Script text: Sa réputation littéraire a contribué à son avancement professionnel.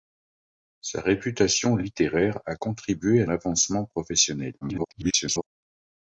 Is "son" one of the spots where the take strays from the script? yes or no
yes